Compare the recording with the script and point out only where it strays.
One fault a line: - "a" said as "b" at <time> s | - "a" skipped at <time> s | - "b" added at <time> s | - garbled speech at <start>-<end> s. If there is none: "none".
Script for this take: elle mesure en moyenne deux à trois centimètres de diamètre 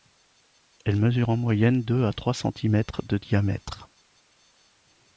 none